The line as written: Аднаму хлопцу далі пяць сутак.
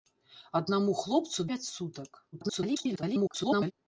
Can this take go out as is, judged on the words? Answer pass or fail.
fail